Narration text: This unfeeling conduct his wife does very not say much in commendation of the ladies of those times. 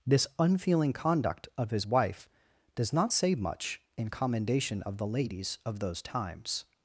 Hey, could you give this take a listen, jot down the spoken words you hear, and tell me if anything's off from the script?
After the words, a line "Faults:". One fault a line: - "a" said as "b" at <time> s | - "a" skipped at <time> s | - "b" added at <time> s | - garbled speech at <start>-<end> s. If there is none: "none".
This unfeeling conduct of his wife does not say much in commendation of the ladies of those times.
Faults:
- "of" added at 1.6 s
- "very" skipped at 2.9 s